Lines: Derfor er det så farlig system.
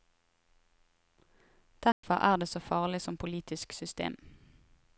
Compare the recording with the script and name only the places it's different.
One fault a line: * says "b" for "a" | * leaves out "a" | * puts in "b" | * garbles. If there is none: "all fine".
* puts in "som politisk"